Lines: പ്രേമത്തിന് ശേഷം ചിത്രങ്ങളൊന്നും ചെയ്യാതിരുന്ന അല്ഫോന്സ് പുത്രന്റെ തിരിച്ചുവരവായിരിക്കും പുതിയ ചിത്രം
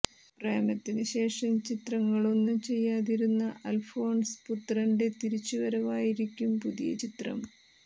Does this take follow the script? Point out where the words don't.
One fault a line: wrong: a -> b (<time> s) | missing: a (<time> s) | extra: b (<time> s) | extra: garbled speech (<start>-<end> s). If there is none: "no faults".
no faults